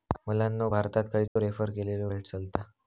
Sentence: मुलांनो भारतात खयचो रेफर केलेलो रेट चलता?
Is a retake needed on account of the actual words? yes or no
no